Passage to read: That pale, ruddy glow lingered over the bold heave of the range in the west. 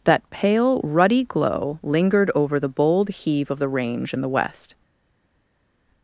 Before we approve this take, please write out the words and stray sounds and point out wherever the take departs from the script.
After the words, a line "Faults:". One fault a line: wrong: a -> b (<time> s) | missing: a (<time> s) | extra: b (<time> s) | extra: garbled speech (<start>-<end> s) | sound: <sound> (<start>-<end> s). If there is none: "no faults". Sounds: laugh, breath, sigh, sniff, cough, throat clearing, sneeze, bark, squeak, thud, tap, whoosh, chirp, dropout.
That pale, ruddy glow lingered over the bold heave of the range in the west.
Faults:
no faults